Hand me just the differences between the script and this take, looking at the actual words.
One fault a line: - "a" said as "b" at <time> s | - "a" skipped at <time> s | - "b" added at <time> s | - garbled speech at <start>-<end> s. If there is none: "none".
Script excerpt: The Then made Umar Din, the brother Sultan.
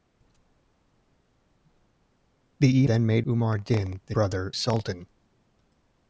none